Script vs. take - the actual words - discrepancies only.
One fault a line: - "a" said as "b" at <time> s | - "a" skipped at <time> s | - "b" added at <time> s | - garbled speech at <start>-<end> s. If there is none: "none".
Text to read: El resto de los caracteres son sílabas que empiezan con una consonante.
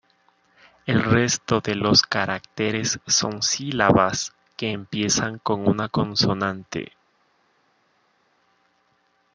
none